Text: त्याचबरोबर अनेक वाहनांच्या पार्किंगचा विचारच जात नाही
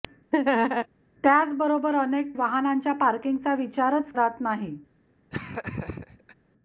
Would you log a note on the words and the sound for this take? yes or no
yes